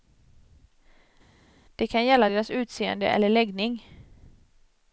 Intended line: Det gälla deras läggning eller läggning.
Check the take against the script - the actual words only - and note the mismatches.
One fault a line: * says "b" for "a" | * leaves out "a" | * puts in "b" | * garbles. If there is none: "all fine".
* puts in "kan"
* says "utseende" for "läggning"